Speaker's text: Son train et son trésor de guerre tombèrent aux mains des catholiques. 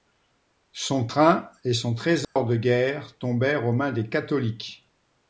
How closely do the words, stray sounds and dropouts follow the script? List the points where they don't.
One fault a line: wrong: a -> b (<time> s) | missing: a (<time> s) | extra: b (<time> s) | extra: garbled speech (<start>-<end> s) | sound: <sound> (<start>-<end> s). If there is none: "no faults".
sound: dropout (2.2-2.4 s)